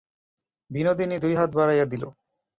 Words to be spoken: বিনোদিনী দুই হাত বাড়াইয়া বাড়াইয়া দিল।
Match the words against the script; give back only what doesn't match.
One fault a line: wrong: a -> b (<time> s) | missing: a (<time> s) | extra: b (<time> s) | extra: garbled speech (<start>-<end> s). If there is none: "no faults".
missing: বাড়াইয়া (1.8 s)